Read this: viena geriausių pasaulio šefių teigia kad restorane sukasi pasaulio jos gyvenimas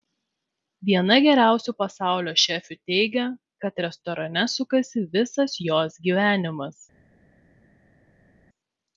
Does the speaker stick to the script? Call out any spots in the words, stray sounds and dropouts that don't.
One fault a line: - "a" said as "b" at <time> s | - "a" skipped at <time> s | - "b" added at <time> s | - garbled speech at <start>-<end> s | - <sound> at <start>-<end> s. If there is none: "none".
- "pasaulio" said as "visas" at 5.2 s